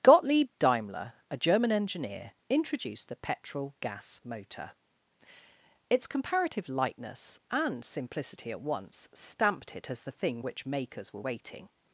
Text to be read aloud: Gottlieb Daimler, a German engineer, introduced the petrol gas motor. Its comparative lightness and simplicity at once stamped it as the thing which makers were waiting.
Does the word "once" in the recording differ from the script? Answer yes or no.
no